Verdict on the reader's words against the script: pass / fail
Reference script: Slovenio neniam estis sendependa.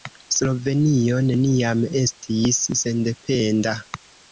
pass